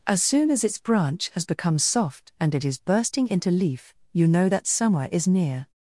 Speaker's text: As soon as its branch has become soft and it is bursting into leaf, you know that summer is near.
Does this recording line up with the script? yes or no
yes